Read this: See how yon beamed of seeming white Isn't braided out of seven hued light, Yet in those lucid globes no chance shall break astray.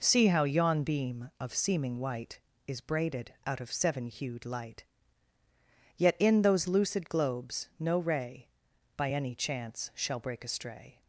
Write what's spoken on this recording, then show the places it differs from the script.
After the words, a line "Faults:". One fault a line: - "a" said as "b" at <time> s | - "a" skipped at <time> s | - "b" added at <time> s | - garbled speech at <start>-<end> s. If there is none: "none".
See how yon beam of seeming white Is braided out of seven hued light, Yet in those lucid globes no ray By any chance shall break astray.
Faults:
- "beamed" said as "beam" at 0.8 s
- "Isn't" said as "Is" at 2.6 s
- "ray By any" added at 8.0 s